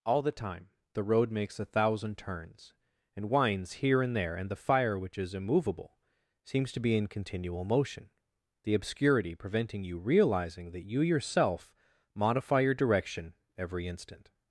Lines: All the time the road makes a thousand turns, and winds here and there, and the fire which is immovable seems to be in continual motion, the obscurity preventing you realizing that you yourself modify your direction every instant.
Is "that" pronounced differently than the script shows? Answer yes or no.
no